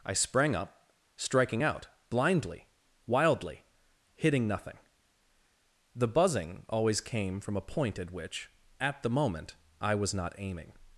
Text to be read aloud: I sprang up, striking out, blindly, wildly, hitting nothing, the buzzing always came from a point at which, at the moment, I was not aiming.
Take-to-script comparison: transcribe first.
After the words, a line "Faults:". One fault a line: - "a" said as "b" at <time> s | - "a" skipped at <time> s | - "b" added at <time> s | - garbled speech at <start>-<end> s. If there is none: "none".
I sprang up, striking out, blindly, wildly, hitting nothing, the buzzing always came from a point at which, at the moment, I was not aiming.
Faults:
none